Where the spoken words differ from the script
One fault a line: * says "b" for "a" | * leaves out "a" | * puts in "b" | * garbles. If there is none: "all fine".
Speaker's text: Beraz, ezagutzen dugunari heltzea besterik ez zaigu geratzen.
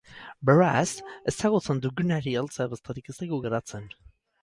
all fine